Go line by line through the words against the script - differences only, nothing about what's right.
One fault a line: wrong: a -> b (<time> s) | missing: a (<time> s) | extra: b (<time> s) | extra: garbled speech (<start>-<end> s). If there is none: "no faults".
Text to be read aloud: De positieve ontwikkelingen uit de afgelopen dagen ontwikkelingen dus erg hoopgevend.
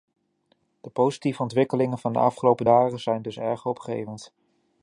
wrong: uit -> van (2.0 s)
wrong: ontwikkelingen -> zijn (3.0 s)